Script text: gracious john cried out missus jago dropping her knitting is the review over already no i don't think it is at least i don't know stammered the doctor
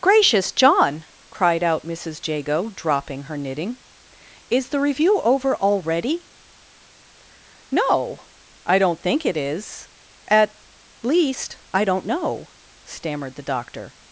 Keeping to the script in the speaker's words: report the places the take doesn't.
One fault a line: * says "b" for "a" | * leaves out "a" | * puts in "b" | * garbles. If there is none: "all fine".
all fine